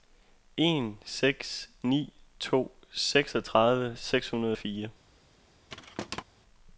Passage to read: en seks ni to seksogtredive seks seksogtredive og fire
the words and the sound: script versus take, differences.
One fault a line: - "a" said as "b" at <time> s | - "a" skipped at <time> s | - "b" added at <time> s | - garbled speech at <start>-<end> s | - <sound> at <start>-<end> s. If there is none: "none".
- "seksogtredive" said as "hundrede" at 4.3 s
- thud at 5.7-6.2 s